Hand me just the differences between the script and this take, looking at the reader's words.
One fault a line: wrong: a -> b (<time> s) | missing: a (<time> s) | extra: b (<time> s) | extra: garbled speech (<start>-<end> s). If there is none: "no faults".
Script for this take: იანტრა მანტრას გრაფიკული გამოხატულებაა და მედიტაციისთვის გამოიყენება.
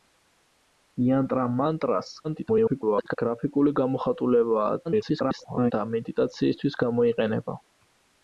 extra: garbled speech (2.2-3.2 s)
extra: garbled speech (4.8-5.7 s)